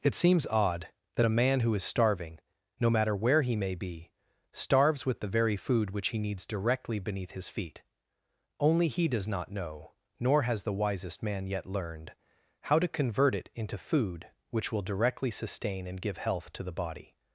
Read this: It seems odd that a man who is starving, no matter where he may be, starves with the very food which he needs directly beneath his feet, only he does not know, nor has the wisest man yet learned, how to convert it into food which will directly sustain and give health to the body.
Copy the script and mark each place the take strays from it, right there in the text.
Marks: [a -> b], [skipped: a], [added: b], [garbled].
It seems odd that a man who is starving, no matter where he may be, starves with the very food which he needs directly beneath his feet, only he does not know, nor has the wisest man yet learned, how to convert it into food which will directly sustain and give health to the body.